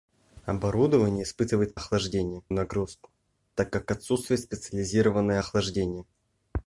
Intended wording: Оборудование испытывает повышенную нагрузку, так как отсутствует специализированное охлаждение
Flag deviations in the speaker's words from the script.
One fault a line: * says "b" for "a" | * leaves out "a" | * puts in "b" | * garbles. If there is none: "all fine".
* says "охлаждение" for "повышенную"